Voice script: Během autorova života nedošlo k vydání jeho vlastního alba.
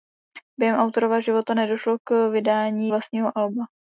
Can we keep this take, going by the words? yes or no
no